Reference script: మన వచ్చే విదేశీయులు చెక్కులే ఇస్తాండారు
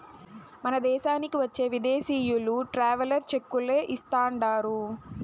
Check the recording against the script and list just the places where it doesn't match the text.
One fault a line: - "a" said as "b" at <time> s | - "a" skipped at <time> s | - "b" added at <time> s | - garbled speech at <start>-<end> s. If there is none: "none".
- "దేశానికి" added at 0.8 s
- "ట్రావెలర్" added at 2.7 s